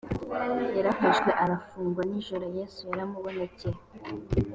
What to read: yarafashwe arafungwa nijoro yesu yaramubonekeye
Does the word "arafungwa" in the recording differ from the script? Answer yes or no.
no